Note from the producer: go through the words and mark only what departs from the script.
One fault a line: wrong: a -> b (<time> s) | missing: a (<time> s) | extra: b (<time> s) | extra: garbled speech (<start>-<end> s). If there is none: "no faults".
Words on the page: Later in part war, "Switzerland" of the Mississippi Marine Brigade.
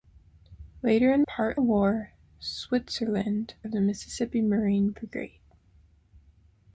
no faults